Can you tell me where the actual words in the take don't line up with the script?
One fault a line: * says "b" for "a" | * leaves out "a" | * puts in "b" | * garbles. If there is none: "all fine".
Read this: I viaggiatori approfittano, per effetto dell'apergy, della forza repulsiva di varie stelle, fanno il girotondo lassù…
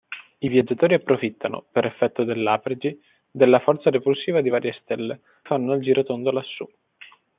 all fine